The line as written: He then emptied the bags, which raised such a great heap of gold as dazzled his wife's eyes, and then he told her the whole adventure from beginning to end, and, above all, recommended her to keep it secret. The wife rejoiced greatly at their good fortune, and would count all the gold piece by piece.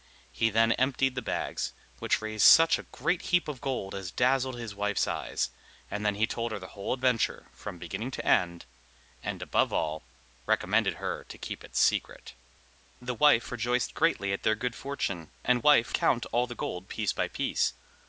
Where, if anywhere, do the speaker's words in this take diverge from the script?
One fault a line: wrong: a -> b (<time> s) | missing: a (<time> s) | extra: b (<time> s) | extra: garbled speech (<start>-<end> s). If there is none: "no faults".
wrong: would -> wife (15.6 s)